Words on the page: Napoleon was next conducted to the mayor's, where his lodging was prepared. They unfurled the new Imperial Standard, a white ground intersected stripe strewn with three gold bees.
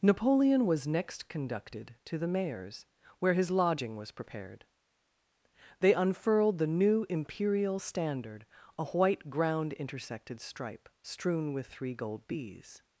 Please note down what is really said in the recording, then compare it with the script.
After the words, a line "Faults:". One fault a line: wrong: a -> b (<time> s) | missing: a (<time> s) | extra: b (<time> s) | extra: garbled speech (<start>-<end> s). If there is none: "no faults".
Napoleon was next conducted to the mayor's, where his lodging was prepared. They unfurled the new Imperial Standard, a white ground intersected stripe strewn with three gold bees.
Faults:
no faults